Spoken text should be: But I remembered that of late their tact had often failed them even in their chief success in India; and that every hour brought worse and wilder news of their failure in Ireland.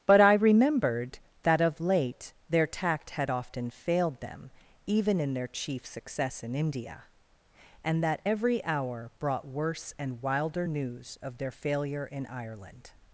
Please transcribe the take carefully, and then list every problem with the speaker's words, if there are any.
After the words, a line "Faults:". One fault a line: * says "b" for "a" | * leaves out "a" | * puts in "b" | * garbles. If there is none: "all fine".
But I remembered that of late their tact had often failed them even in their chief success in India; and that every hour brought worse and wilder news of their failure in Ireland.
Faults:
all fine